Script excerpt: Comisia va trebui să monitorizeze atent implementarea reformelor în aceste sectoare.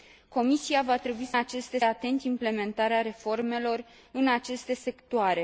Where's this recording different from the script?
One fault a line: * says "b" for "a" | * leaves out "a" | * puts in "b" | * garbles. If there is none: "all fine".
* says "aceste" for "monitorizeze"